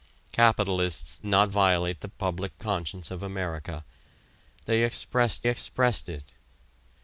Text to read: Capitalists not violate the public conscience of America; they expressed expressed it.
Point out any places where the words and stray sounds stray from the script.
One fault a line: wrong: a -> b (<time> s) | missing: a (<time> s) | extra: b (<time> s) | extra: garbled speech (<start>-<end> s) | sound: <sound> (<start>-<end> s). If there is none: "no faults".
no faults